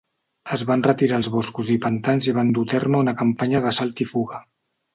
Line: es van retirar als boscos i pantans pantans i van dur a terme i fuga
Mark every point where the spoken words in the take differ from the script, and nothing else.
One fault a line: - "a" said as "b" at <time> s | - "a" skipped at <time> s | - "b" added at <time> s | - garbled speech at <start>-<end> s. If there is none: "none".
- "pantans" skipped at 2.3 s
- "una campanya d'assalt" added at 3.1 s